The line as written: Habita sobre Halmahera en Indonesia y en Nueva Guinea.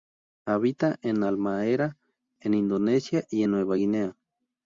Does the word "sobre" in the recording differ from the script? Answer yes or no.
yes